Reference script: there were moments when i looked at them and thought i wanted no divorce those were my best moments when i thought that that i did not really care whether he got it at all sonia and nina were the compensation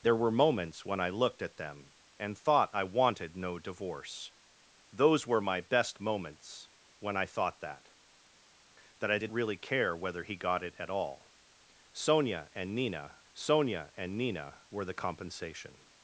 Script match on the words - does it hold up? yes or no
no